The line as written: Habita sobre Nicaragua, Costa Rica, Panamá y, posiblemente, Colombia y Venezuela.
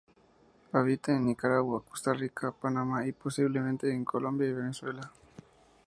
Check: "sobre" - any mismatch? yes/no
yes